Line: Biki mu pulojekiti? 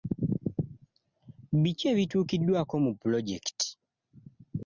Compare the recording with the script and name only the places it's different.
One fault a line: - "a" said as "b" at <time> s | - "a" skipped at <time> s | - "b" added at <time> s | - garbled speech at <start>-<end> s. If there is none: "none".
- "ebituukiddwako" added at 1.9 s